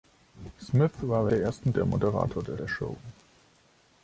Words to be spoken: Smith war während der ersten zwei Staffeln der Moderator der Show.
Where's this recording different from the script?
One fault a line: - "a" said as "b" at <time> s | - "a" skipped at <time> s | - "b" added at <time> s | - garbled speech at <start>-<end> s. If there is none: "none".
- "während" skipped at 1.3 s
- "zwei Staffeln" said as "der Moderator" at 1.7 s
- "Moderator" skipped at 2.6 s